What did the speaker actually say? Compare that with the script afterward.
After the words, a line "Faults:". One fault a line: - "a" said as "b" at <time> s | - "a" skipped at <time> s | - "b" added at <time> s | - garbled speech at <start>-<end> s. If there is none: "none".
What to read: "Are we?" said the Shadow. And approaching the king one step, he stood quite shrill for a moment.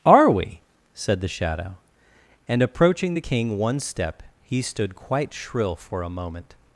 "Are we?" said the Shadow. And approaching the king one step, he stood quite shrill for a moment.
Faults:
none